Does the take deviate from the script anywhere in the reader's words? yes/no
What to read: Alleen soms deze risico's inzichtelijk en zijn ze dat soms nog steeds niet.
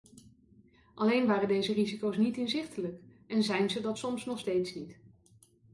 yes